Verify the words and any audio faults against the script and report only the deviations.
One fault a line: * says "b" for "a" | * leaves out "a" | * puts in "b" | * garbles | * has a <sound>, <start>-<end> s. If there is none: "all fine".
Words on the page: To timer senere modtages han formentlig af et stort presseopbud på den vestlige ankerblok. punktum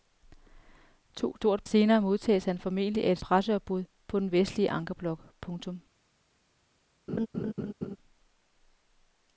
* says "stort" for "timer"
* leaves out "stort"
* has a laugh, 7.1-8.0 s